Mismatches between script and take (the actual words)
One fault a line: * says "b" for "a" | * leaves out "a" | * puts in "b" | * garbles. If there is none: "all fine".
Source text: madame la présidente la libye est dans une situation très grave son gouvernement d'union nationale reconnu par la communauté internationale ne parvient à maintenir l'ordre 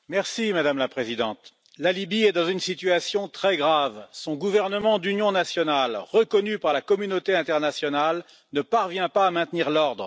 * puts in "pas"